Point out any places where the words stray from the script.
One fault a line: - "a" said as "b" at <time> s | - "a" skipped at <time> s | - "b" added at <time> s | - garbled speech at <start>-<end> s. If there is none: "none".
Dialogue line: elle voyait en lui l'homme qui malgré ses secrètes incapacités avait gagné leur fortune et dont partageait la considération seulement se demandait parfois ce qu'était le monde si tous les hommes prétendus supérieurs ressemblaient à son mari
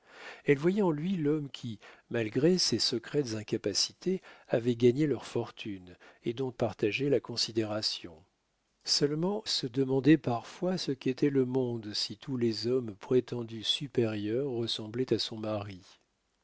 none